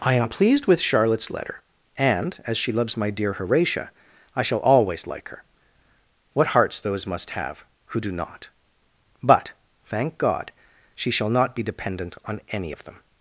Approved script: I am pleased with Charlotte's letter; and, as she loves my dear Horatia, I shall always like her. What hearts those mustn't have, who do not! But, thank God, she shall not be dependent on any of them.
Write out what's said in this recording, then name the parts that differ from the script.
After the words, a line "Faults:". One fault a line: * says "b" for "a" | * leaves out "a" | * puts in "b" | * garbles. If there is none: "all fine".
I am pleased with Charlotte's letter; and, as she loves my dear Horatia, I shall always like her. What hearts those must have, who do not! But, thank God, she shall not be dependent on any of them.
Faults:
* says "must" for "mustn't"